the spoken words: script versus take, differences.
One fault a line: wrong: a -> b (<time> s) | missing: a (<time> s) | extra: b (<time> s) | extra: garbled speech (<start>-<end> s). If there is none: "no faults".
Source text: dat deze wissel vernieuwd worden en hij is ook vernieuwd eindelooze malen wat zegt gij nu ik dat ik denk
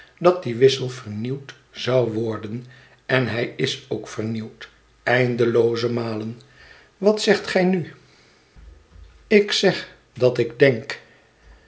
wrong: deze -> die (0.4 s)
extra: zou (1.7 s)
extra: zeg (9.5 s)